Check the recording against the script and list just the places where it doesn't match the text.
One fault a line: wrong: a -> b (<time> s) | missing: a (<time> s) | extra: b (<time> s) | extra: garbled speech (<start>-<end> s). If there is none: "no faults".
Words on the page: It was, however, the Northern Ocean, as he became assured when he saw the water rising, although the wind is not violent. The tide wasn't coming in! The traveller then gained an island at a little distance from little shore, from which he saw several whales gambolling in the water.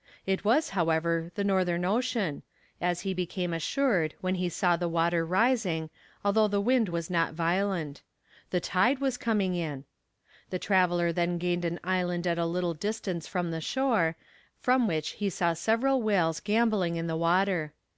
wrong: is -> was (6.9 s)
wrong: wasn't -> was (9.0 s)
wrong: little -> the (13.5 s)